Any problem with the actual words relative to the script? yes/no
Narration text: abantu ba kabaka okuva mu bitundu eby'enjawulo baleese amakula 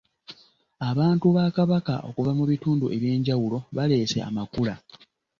no